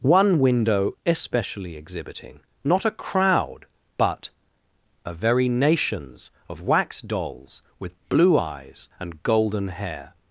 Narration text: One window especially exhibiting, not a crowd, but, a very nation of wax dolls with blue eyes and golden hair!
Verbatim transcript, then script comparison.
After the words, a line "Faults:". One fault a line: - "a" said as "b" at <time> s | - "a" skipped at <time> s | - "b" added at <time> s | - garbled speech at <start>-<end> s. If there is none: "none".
One window especially exhibiting, not a crowd, but, a very nations of wax dolls with blue eyes and golden hair!
Faults:
- "nation" said as "nations" at 5.5 s